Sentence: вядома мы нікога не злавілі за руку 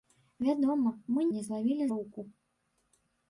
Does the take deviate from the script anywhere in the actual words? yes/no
yes